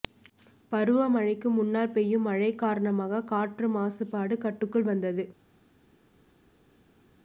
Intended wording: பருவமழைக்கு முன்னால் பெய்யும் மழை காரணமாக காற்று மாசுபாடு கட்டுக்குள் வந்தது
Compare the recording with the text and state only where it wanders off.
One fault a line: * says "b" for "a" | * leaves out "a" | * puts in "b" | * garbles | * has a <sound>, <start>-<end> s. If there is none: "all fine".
all fine